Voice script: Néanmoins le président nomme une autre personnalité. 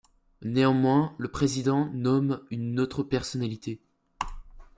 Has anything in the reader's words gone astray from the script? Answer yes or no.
no